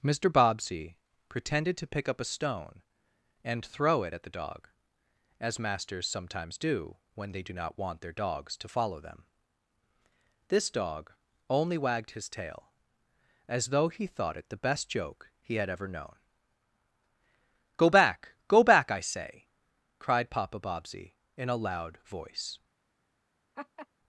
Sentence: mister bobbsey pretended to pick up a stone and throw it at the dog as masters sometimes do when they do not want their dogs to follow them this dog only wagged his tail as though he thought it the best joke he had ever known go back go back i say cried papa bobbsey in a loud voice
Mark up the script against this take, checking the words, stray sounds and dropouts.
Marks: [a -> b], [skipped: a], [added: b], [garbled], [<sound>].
mister bobbsey pretended to pick up a stone and throw it at the dog as masters sometimes do when they do not want their dogs to follow them this dog only wagged his tail as though he thought it the best joke he had ever known go back go back i say cried papa bobbsey in a loud voice [laugh]